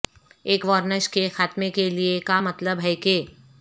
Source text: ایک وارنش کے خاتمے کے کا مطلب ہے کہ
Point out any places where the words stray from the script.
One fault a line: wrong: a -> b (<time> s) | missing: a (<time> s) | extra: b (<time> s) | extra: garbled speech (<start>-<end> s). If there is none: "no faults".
extra: لئے (1.9 s)